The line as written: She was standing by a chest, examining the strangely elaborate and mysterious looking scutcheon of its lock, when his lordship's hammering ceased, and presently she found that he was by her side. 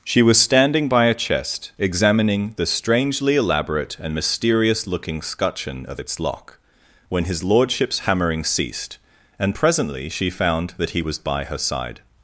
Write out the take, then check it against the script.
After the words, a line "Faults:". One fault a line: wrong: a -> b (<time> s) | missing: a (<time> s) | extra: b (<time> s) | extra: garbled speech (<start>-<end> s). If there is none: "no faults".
She was standing by a chest, examining the strangely elaborate and mysterious looking scutcheon of its lock, when his lordship's hammering ceased, and presently she found that he was by her side.
Faults:
no faults